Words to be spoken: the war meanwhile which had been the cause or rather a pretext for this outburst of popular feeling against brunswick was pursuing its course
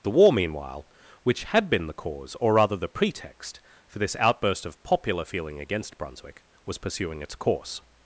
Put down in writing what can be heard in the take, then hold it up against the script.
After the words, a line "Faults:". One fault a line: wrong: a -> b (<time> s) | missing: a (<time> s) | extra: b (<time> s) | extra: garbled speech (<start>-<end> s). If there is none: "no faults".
the war meanwhile which had been the cause or rather the pretext for this outburst of popular feeling against brunswick was pursuing its course
Faults:
wrong: a -> the (2.8 s)